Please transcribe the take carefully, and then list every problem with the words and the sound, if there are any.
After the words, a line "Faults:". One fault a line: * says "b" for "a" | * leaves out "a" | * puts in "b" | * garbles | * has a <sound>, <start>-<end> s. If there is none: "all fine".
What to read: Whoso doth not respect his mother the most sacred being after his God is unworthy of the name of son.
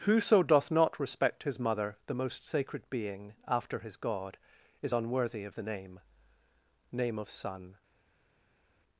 Whoso doth not respect his mother the most sacred being after his God is unworthy of the name name of son.
Faults:
* puts in "name"